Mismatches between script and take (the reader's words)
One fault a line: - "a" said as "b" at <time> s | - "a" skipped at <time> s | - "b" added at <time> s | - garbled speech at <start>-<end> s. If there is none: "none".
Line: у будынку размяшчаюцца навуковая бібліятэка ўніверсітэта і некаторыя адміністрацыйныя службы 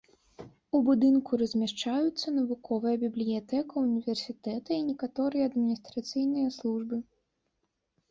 none